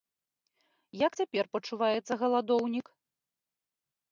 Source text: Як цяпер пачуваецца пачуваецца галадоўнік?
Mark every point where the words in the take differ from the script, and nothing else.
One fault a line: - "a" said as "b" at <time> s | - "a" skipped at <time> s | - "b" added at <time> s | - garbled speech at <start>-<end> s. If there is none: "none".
- "пачуваецца" skipped at 2.1 s